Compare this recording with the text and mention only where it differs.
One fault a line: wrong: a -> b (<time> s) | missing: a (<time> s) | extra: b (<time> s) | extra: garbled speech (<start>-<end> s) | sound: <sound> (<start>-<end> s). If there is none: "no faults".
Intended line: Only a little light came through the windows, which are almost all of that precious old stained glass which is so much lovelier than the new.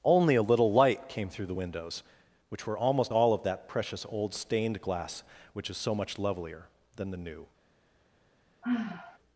wrong: are -> were (2.7 s)
sound: sigh (8.6-9.2 s)